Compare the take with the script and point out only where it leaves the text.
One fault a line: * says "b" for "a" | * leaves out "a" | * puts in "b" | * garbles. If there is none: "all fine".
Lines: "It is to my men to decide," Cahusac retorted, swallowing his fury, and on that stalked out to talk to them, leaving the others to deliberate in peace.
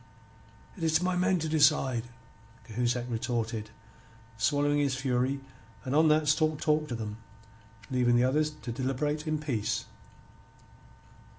* leaves out "out to"